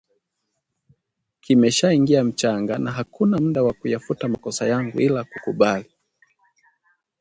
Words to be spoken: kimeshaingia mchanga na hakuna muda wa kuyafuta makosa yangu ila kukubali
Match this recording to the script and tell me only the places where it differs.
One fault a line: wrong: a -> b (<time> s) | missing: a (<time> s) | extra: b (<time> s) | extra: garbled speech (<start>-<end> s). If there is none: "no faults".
no faults